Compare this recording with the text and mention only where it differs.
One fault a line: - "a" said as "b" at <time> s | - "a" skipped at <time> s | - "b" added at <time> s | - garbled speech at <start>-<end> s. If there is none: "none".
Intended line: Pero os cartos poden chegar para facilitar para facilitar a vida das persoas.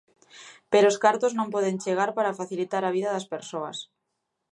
- "non" added at 1.4 s
- "para facilitar" skipped at 2.8 s